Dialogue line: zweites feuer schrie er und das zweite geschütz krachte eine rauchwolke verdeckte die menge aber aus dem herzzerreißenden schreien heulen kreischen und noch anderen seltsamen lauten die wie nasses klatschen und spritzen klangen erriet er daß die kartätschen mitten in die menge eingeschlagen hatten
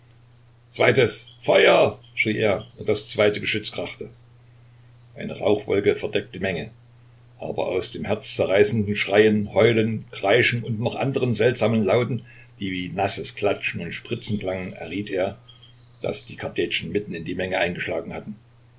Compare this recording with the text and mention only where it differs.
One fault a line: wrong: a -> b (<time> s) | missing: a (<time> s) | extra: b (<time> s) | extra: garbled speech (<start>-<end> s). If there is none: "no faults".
missing: die (6.4 s)